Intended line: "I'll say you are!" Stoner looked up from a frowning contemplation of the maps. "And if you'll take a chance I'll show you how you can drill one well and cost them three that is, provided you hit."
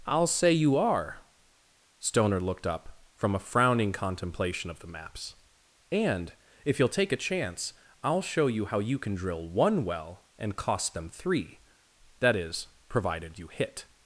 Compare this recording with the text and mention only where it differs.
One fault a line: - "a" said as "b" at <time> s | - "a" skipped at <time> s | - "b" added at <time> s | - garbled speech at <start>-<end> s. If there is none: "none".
none